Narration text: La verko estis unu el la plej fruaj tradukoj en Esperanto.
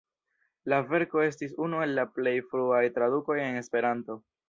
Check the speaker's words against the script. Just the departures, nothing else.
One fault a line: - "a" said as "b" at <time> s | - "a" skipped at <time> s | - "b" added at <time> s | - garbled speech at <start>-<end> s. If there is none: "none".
none